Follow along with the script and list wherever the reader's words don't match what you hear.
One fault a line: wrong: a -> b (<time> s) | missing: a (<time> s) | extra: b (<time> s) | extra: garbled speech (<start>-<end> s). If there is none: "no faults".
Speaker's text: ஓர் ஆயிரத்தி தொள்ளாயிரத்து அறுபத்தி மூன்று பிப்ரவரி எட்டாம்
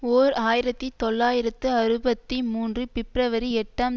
no faults